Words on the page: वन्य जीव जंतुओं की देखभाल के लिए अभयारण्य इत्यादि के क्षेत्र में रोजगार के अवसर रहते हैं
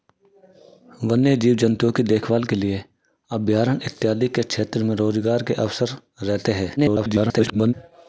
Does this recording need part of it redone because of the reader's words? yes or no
yes